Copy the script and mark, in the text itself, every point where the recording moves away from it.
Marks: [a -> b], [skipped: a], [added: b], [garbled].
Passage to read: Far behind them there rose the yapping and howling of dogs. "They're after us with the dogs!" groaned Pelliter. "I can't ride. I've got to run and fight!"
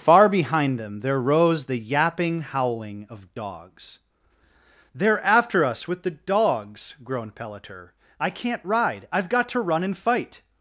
Far behind them there rose the yapping [skipped: and] howling of dogs. "They're after us with the dogs!" groaned Pelliter. "I can't ride. I've got to run and fight!"